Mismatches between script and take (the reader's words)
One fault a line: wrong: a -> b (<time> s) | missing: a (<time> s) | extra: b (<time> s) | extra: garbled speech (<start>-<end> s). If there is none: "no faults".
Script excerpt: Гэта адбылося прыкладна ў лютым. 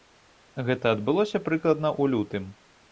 no faults